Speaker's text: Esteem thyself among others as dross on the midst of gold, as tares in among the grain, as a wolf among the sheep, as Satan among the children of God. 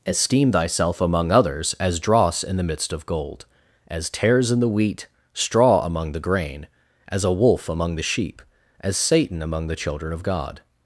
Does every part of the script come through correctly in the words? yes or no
no